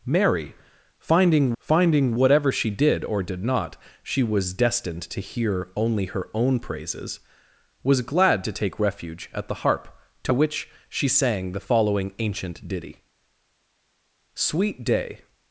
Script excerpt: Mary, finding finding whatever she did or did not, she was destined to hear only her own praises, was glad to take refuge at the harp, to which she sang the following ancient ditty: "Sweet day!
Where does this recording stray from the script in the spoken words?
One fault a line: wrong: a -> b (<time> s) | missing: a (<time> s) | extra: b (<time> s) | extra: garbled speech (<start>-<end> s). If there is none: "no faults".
no faults